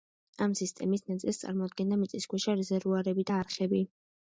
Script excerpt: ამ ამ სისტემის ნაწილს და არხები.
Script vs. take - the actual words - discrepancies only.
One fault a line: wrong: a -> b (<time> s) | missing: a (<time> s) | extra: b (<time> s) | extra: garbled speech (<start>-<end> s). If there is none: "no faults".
missing: ამ (0.6 s)
extra: წარმოადგენდა მიწისქვეშა რეზერვუარები (1.4 s)